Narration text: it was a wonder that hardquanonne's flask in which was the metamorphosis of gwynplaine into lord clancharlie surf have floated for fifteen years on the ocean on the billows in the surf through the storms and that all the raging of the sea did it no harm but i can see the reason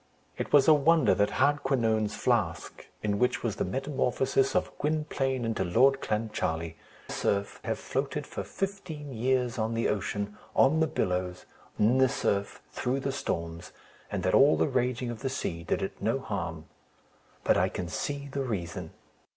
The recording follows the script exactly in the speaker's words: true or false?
true